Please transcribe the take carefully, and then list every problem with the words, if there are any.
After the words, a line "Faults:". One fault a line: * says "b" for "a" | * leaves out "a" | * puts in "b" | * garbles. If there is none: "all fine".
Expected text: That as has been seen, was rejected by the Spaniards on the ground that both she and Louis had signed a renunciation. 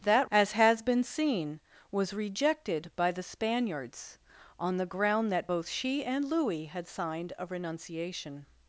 That as has been seen, was rejected by the Spaniards on the ground that both she and Louis had signed a renunciation.
Faults:
all fine